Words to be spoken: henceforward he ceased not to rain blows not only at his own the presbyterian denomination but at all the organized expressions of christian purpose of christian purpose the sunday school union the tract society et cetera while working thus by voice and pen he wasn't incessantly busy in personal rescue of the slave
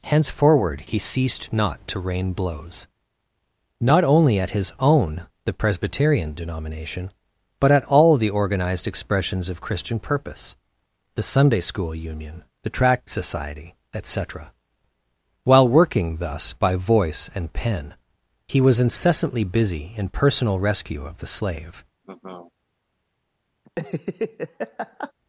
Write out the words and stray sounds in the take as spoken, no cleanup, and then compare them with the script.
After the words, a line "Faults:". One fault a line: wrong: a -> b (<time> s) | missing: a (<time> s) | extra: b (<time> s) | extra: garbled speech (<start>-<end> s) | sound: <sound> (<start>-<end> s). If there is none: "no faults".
henceforward he ceased not to rain blows not only at his own the presbyterian denomination but at all the organized expressions of christian purpose the sunday school union the tract society et cetera while working thus by voice and pen he was incessantly busy in personal rescue of the slave
Faults:
missing: of christian purpose (10.6 s)
wrong: wasn't -> was (18.6 s)
sound: laugh (22.0-22.5 s)
sound: laugh (23.7-25.1 s)